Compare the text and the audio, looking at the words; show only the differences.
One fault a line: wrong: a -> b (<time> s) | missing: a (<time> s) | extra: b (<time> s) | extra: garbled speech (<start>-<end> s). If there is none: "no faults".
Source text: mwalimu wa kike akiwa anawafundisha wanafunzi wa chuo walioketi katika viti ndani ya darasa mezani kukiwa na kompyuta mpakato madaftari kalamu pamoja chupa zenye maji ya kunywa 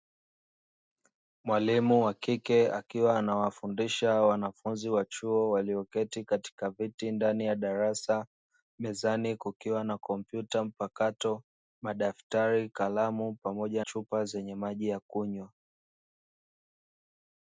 no faults